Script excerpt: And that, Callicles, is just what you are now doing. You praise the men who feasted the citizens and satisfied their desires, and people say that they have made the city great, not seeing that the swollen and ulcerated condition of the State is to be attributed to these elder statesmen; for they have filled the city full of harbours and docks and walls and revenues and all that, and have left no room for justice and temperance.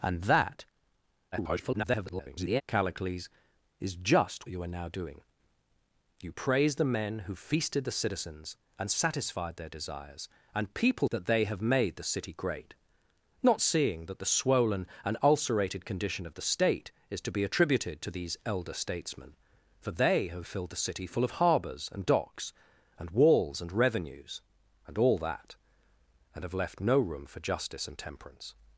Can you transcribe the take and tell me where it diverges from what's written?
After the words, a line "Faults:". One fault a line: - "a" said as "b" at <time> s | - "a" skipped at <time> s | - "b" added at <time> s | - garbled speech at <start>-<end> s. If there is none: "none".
And that, [garbled] Callicles, is just you are now doing. You praise the men who feasted the citizens and satisfied their desires, and people that they have made the city great, not seeing that the swollen and ulcerated condition of the State is to be attributed to these elder statesmen; for they have filled the city full of harbours and docks and walls and revenues and all that, and have left no room for justice and temperance.
Faults:
- garbled speech at 1.3-2.6 s
- "what" skipped at 4.5 s
- "say" skipped at 11.1 s